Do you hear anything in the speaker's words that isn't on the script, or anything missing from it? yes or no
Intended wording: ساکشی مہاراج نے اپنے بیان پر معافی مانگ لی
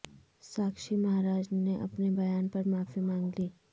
no